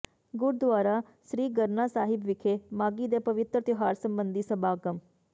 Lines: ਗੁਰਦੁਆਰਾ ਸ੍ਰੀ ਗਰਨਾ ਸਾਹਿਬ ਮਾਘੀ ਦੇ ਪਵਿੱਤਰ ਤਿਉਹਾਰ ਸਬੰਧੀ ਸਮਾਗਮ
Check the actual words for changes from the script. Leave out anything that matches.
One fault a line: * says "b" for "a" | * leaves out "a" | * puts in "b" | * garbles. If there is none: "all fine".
* puts in "ਵਿਖੇ"